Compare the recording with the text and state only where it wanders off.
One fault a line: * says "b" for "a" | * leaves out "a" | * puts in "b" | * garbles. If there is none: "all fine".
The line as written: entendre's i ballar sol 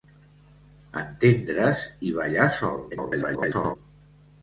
* garbles